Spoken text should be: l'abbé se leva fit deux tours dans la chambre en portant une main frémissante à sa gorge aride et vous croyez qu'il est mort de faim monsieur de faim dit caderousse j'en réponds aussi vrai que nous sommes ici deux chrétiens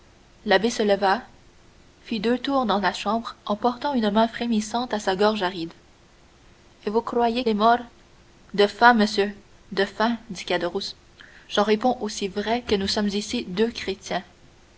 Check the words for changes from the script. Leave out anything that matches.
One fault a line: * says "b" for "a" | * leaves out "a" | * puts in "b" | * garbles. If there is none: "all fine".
* leaves out "qu'il"